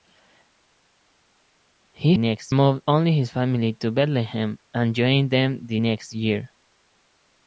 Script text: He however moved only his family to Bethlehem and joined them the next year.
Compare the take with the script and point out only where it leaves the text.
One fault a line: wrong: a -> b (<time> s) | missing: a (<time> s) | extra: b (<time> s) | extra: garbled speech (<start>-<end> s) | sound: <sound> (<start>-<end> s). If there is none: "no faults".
wrong: however -> next (2.1 s)